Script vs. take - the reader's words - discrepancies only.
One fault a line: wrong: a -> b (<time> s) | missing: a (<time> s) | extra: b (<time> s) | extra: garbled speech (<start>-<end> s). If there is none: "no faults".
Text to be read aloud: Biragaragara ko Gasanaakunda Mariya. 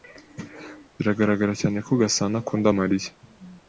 extra: cyane (1.6 s)